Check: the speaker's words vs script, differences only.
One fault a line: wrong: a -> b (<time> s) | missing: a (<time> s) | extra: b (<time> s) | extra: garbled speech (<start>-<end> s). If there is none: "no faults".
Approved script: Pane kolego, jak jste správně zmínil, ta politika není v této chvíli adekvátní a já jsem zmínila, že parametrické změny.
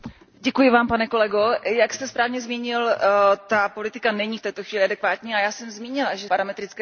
no faults